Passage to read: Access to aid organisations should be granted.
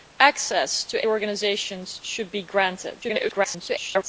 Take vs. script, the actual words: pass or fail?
fail